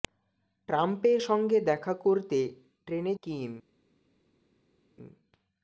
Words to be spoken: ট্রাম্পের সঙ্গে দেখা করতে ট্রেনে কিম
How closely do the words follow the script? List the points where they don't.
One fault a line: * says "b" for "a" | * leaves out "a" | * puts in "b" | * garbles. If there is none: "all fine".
all fine